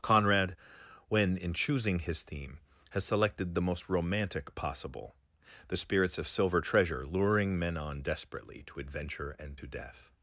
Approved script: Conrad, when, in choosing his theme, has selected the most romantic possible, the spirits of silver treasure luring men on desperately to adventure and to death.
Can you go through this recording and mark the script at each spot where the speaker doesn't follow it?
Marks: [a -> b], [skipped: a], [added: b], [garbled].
Conrad, when, in choosing his theme, has selected the most romantic possible, the spirits of silver treasure luring men on desperately to adventure and to death.